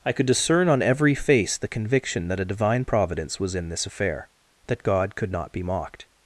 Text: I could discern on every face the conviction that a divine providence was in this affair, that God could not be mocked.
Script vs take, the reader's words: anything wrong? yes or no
no